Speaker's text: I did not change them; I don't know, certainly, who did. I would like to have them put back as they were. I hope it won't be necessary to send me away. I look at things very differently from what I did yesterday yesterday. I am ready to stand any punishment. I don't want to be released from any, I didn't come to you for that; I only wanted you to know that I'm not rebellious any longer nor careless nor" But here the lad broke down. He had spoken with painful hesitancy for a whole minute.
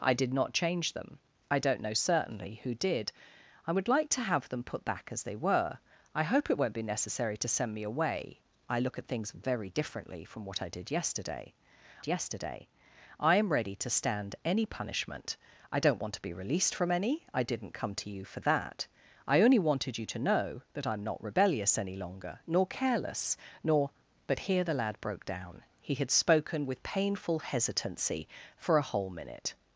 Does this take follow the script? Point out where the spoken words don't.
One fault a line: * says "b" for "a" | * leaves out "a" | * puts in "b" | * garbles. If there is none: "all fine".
all fine